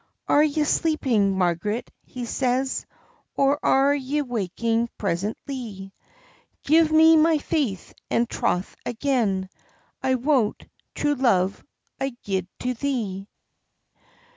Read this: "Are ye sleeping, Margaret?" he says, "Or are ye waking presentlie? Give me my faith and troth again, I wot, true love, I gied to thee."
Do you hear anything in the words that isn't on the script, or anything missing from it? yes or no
no